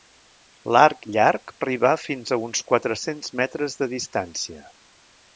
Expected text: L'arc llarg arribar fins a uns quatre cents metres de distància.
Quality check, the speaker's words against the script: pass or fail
pass